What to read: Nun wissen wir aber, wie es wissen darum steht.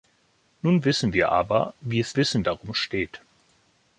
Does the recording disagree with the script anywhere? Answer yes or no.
no